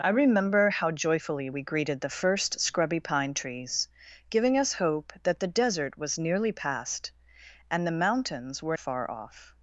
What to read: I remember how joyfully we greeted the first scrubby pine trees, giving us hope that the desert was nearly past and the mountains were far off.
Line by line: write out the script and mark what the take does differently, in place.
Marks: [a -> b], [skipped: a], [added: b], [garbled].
I remember how joyfully we greeted the first scrubby pine trees, giving us hope that the desert was nearly past and the mountains were far off.